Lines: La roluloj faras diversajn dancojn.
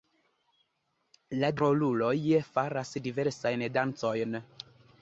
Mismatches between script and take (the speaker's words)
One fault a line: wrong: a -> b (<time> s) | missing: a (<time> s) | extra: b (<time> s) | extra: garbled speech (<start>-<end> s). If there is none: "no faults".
no faults